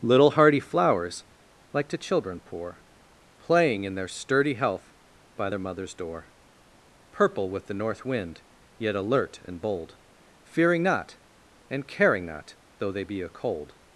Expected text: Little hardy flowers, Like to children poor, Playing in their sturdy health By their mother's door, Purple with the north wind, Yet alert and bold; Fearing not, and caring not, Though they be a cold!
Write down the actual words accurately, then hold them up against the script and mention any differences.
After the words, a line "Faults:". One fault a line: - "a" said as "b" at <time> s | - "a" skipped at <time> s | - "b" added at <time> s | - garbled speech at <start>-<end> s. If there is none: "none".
Little hardy flowers, Like to children poor, Playing in their sturdy health By their mother's door, Purple with the north wind, Yet alert and bold; Fearing not, and caring not, Though they be a cold!
Faults:
none